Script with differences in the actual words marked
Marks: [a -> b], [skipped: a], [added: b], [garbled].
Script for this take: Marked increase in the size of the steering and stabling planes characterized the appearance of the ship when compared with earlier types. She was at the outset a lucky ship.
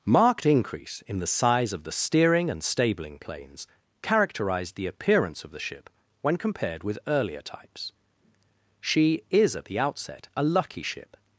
Marked increase in the size of the steering and stabling planes characterized the appearance of the ship when compared with earlier types. She [was -> is] at the outset a lucky ship.